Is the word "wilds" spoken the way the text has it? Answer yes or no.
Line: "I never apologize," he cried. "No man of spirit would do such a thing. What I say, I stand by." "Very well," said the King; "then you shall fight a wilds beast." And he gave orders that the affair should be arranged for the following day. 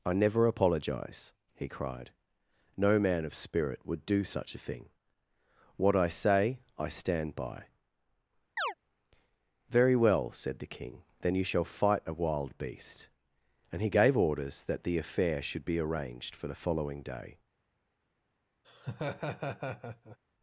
no